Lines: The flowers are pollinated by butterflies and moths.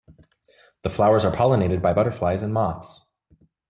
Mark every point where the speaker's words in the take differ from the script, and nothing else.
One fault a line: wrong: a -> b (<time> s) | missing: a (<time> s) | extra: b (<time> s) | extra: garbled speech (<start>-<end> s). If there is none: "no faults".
no faults